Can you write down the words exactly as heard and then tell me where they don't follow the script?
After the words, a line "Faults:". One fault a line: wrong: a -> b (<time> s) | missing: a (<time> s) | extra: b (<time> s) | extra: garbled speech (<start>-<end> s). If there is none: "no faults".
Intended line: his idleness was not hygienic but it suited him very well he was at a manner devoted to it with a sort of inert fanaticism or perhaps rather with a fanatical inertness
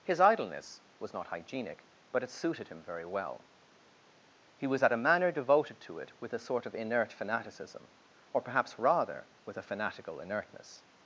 his idleness was not hygienic but it suited him very well he was at a manner devoted to it with a sort of inert fanaticism or perhaps rather with a fanatical inertness
Faults:
no faults